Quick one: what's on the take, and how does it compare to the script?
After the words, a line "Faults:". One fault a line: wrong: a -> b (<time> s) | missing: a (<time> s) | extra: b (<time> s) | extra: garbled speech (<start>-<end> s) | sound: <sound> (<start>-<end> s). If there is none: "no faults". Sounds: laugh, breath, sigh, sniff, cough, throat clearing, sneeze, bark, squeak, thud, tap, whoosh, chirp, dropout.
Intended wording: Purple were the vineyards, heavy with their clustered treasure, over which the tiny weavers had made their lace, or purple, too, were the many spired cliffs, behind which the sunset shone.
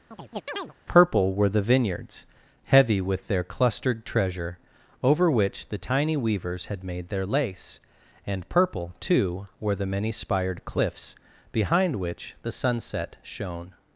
Purple were the vineyards, heavy with their clustered treasure, over which the tiny weavers had made their lace, and purple, too, were the many spired cliffs, behind which the sunset shone.
Faults:
sound: chirp (0.1-0.7 s)
wrong: or -> and (8.2 s)